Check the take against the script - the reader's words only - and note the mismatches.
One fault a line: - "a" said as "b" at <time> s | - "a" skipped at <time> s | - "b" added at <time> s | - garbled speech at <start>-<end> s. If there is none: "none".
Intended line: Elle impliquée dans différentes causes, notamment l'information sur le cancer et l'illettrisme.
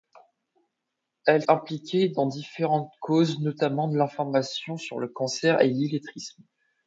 none